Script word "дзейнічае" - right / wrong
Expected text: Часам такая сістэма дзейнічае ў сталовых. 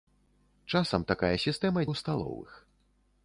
wrong